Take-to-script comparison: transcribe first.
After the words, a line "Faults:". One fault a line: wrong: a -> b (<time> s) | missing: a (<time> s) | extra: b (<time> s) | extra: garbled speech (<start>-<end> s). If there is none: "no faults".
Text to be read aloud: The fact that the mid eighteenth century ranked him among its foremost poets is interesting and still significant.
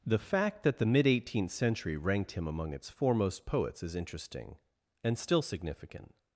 The fact that the mid eighteenth century ranked him among its foremost poets is interesting and still significant.
Faults:
no faults